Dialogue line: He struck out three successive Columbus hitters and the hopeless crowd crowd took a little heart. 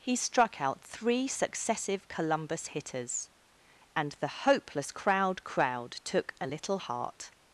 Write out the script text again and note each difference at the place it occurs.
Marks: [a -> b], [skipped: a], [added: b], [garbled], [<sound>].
He struck out three successive Columbus hitters and the hopeless crowd crowd took a little heart.